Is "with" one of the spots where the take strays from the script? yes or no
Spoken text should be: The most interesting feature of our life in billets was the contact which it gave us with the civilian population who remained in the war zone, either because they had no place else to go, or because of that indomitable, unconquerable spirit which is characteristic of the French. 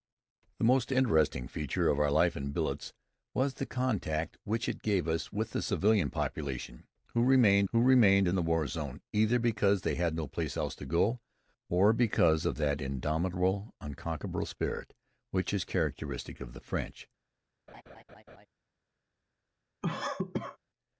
no